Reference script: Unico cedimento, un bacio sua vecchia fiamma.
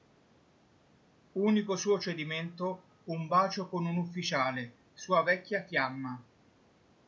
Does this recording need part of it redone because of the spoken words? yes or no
yes